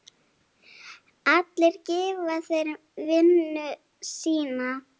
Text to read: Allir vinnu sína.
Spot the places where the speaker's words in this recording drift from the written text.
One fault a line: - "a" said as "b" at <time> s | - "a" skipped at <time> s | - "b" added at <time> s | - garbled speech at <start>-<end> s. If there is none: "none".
- "gefa þeir" added at 1.9 s